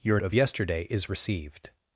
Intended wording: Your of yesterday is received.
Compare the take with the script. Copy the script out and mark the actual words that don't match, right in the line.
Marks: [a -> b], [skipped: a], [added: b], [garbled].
Your of yesterday is received.